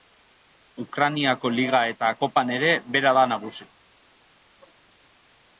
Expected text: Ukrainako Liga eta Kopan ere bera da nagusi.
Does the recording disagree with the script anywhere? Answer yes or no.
no